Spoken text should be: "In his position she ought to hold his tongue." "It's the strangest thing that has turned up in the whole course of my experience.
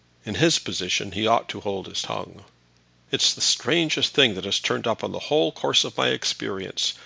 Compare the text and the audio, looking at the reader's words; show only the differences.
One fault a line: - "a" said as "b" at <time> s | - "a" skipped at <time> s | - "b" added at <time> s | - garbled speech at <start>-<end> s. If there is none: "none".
- "she" said as "he" at 1.1 s